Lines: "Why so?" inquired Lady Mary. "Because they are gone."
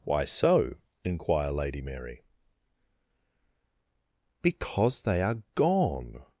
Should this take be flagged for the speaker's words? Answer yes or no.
yes